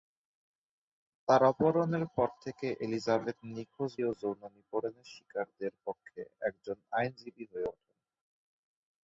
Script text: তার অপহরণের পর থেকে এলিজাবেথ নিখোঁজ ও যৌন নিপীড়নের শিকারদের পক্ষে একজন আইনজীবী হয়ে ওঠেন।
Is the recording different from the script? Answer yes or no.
no